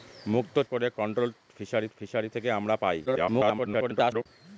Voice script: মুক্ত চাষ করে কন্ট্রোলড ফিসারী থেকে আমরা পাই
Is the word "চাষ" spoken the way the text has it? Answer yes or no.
no